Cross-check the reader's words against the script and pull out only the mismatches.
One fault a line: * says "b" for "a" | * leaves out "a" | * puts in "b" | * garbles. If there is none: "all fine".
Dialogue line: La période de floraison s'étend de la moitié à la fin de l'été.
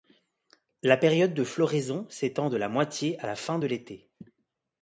all fine